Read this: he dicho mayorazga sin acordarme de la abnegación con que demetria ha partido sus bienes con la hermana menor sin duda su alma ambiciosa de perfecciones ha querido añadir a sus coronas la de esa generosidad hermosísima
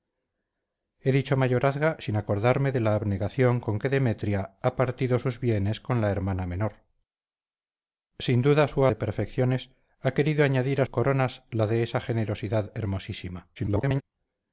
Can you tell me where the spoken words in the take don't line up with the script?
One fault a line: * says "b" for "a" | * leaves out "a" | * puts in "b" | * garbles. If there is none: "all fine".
* leaves out "alma ambiciosa"
* leaves out "sus"
* garbles